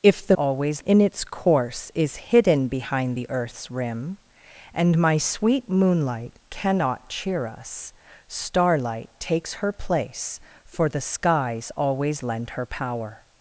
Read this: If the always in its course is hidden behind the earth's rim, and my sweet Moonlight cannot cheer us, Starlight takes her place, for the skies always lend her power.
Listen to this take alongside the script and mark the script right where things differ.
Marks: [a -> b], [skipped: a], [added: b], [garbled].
If the always in its course is hidden behind the earth's rim, and my sweet Moonlight cannot cheer us, Starlight takes her place, for the skies always lend her power.